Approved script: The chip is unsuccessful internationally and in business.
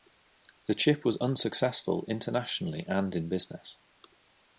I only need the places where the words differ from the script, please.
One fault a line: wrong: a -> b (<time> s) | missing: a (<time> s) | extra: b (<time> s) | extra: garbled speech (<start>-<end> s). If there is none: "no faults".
wrong: is -> was (1.1 s)